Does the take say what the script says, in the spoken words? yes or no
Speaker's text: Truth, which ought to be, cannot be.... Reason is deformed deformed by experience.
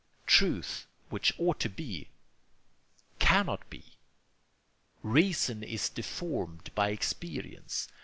no